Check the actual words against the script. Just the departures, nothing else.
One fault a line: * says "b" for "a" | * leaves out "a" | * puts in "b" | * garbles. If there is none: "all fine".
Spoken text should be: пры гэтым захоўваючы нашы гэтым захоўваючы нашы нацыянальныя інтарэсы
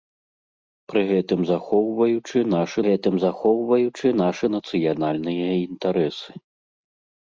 all fine